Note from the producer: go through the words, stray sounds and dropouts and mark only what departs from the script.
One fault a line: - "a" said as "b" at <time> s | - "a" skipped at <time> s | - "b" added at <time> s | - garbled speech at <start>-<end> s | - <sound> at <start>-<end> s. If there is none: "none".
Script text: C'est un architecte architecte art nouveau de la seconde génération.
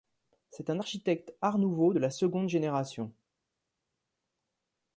- "architecte" skipped at 1.3 s